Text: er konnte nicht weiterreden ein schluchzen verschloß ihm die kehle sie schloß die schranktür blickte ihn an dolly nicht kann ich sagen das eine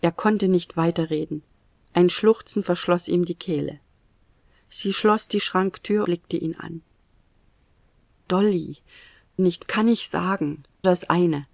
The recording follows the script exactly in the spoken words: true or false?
true